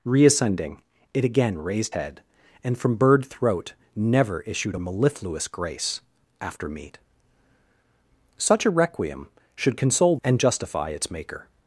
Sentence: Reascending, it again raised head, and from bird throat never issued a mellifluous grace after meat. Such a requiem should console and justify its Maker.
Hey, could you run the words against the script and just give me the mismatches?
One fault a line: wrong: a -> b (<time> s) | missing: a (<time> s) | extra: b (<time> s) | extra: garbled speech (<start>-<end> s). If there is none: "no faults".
no faults